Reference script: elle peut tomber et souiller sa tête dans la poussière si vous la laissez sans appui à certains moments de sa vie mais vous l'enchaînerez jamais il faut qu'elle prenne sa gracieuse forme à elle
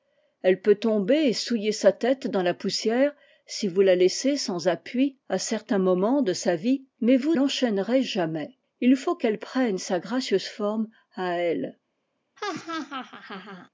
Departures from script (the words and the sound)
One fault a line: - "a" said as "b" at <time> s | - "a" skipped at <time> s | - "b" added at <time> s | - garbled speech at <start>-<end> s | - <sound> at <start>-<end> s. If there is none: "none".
- laugh at 12.4-13.7 s